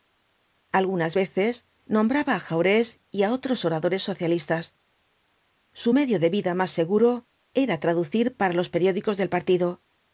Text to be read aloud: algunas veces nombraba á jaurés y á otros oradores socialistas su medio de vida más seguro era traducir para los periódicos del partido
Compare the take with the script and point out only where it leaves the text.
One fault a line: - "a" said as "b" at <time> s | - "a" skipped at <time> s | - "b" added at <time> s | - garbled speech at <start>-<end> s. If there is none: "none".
none